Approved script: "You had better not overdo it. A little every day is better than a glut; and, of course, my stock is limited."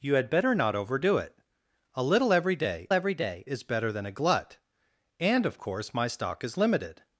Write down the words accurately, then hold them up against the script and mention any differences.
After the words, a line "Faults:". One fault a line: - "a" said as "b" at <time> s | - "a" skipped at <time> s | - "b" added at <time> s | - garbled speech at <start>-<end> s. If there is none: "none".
"You had better not overdo it. A little every day every day is better than a glut; and, of course, my stock is limited."
Faults:
- "every day" added at 2.9 s